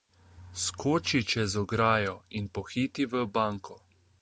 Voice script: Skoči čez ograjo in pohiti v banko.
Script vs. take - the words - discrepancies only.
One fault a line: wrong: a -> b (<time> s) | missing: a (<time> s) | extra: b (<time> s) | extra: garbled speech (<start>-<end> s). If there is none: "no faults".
no faults